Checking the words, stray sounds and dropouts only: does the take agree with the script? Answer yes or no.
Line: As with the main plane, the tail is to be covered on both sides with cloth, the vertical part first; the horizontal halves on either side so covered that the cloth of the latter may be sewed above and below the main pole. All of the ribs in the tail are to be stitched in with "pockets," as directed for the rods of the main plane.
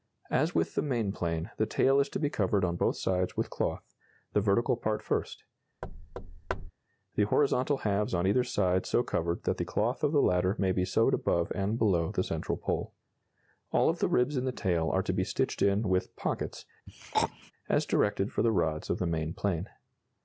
no